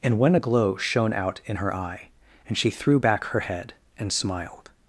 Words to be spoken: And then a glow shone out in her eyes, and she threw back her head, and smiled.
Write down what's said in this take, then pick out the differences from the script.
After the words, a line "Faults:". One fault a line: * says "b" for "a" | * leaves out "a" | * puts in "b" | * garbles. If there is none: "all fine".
And when a glow shone out in her eye, and she threw back her head, and smiled.
Faults:
* says "when" for "then"
* says "eye" for "eyes"